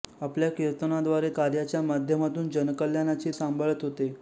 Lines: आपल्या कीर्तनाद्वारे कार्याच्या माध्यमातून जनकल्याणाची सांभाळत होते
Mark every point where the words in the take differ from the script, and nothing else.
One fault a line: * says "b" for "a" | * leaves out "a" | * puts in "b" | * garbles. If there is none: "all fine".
all fine